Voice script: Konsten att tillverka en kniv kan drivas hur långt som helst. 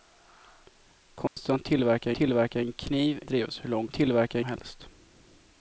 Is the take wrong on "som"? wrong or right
wrong